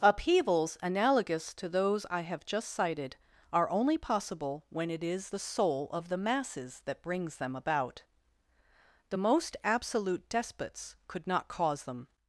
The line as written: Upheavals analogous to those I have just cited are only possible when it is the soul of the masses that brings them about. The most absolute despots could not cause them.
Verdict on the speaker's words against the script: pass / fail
pass